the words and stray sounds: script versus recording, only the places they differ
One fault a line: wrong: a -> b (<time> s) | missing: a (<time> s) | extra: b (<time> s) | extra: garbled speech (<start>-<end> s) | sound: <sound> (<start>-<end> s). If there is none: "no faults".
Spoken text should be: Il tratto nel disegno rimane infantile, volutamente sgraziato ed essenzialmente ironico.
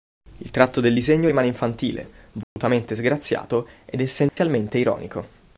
wrong: nel -> del (0.8 s)
sound: dropout (2.4-2.6 s)
sound: dropout (4.3-4.4 s)